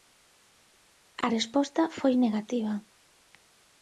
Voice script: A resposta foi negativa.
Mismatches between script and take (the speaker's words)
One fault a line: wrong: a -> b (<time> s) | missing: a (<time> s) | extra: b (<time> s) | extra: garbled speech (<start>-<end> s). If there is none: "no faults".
no faults